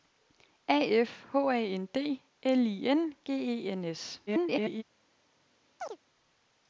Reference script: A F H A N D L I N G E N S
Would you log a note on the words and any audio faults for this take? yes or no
yes